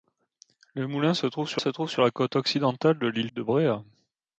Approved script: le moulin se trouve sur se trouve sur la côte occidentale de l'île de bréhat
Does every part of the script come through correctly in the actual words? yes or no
yes